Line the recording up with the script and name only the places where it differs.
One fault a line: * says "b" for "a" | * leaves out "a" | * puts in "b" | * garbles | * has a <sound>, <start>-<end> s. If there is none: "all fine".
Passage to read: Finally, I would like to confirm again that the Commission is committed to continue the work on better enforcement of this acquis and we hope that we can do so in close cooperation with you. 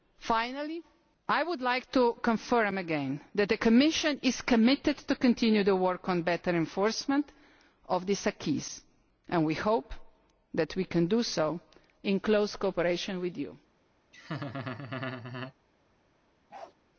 * has a laugh, 14.1-15.5 s
* has a bark, 16.5-16.7 s